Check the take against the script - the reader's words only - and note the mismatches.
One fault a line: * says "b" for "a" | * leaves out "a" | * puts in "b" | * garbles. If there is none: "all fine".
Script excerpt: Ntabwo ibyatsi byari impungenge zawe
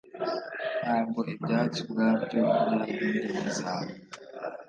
* puts in "ubwabyo"